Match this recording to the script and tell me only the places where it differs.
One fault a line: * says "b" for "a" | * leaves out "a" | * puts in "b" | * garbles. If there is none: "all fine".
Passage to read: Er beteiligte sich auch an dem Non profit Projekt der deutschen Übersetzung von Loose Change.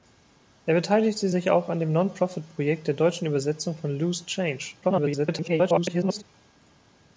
* garbles